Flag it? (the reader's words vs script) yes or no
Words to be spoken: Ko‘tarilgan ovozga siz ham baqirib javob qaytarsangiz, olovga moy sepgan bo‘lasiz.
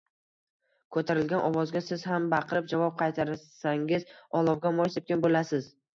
no